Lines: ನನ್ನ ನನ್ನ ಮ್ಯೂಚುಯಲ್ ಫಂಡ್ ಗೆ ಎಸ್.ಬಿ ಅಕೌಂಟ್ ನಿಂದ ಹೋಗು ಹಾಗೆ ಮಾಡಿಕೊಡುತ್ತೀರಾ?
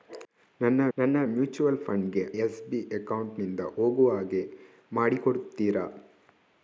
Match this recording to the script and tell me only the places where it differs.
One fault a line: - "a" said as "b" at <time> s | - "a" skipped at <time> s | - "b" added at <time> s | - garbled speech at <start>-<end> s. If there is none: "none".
none